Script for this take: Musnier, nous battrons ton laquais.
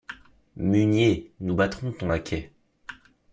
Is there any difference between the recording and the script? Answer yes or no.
no